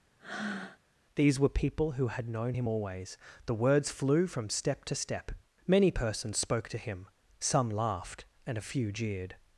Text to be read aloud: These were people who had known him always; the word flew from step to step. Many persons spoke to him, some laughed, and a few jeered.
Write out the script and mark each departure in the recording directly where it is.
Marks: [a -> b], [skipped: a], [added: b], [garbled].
These were people who had known him always; the [word -> words] flew from step to step. Many persons spoke to him, some laughed, and a few jeered.